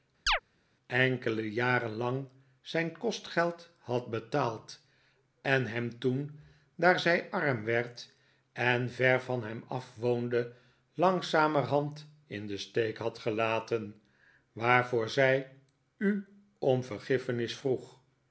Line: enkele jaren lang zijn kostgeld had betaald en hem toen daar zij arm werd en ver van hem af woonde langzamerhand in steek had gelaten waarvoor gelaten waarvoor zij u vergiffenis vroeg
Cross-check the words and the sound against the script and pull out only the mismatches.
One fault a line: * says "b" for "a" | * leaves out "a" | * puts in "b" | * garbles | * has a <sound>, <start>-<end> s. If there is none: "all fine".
* has a chirp, 0.3-0.4 s
* puts in "den"
* leaves out "gelaten waarvoor"
* puts in "om"